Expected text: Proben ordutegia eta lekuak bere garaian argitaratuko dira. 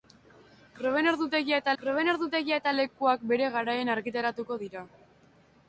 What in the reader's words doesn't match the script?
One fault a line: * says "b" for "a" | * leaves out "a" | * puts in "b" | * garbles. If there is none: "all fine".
* puts in "proben ordutegia eta"